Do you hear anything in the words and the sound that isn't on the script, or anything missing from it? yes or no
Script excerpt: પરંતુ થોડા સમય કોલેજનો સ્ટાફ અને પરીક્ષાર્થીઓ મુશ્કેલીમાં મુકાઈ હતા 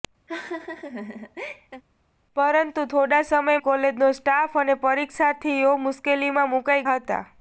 yes